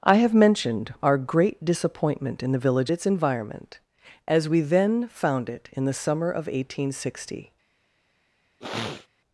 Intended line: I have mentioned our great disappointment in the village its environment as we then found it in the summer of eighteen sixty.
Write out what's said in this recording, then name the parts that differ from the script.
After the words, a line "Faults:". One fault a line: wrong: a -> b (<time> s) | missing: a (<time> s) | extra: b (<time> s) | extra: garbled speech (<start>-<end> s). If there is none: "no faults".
I have mentioned our great disappointment in the village its environment as we then found it in the summer of eighteen sixty.
Faults:
no faults